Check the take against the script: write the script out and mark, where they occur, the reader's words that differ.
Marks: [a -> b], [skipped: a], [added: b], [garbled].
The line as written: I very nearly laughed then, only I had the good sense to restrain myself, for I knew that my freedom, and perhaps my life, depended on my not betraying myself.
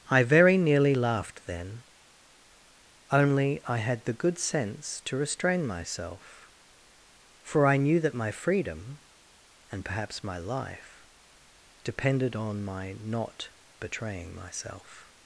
I very nearly laughed then, only I had the good sense to restrain myself, for I knew that my freedom, and perhaps my life, depended on my not betraying myself.